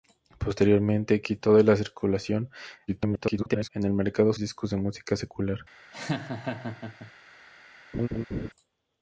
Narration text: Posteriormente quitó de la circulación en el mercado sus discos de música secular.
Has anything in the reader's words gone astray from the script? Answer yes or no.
yes